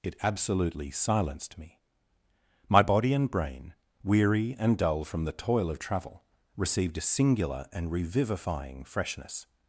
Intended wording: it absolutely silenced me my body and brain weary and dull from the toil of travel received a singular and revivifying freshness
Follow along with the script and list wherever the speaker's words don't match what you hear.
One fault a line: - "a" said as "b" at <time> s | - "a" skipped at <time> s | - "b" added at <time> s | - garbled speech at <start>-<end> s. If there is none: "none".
none